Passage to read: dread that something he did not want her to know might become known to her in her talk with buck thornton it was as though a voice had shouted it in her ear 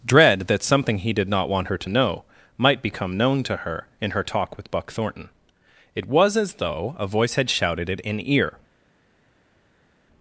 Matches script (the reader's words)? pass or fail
fail